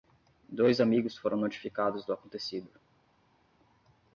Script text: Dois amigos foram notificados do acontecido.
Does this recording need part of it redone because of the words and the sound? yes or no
no